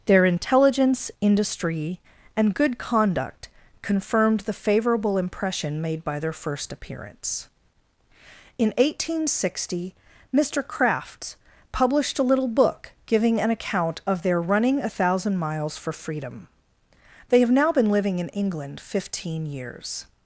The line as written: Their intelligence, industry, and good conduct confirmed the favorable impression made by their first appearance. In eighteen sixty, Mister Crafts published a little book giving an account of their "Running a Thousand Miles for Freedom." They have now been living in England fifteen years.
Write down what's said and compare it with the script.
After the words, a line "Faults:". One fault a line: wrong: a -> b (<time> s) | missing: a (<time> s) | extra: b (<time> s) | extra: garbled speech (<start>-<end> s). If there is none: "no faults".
Their intelligence, industry, and good conduct confirmed the favorable impression made by their first appearance. In eighteen sixty, Mister Crafts published a little book giving an account of their "Running a Thousand Miles for Freedom." They have now been living in England fifteen years.
Faults:
no faults